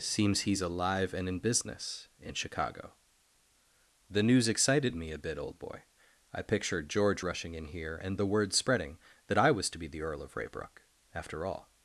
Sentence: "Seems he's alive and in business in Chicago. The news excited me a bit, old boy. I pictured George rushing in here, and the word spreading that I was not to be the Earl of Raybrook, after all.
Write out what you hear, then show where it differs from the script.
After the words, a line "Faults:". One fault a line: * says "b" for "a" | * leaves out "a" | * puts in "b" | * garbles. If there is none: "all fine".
"Seems he's alive and in business in Chicago. The news excited me a bit, old boy. I pictured George rushing in here, and the word spreading that I was to be the Earl of Raybrook, after all.
Faults:
* leaves out "not"